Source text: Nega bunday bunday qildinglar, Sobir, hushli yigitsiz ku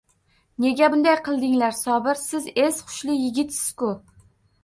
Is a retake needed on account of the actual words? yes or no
yes